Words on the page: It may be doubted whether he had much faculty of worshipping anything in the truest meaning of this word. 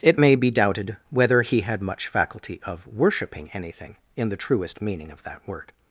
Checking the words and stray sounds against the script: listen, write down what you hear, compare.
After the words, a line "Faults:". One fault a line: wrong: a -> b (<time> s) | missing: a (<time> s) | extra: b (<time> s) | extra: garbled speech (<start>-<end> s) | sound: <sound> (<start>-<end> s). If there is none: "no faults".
It may be doubted whether he had much faculty of worshipping anything in the truest meaning of that word.
Faults:
wrong: this -> that (5.2 s)